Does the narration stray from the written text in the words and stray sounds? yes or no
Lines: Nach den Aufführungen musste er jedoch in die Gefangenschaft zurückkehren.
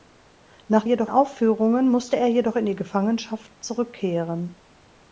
yes